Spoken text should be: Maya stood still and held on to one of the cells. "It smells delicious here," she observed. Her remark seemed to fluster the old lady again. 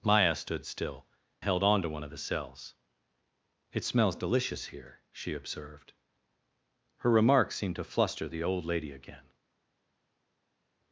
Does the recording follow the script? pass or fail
fail